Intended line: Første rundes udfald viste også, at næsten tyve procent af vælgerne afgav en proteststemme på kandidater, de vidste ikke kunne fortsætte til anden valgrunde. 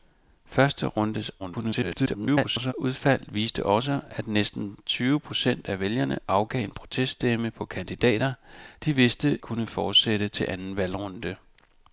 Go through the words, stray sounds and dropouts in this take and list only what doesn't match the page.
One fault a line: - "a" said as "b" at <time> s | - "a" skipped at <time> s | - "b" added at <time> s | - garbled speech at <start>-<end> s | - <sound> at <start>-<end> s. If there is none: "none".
- garbled speech at 1.4-2.7 s
- "ikke" skipped at 9.4 s